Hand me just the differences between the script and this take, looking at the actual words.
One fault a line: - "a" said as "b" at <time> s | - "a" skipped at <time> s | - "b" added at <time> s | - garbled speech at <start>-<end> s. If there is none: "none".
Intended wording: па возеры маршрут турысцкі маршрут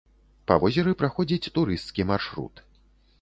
- "маршрут" said as "праходзіць" at 1.0 s